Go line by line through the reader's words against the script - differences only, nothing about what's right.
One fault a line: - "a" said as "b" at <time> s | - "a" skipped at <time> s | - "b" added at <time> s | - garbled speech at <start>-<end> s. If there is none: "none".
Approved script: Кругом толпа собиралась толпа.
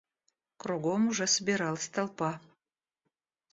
- "толпа" said as "уже" at 1.1 s